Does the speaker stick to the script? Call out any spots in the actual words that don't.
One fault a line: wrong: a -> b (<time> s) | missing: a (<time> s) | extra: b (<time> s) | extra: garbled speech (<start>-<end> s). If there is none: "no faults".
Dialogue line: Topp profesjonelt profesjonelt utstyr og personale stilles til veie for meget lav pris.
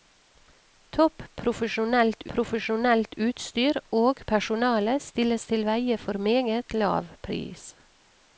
no faults